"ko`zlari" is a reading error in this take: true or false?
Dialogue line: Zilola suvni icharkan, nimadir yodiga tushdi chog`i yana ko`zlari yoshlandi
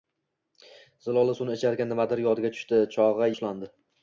true